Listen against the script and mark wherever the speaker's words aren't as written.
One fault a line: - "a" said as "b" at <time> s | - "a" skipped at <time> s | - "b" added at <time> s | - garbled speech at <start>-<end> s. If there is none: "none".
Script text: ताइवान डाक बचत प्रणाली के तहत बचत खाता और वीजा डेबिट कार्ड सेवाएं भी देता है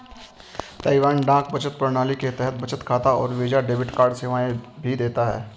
none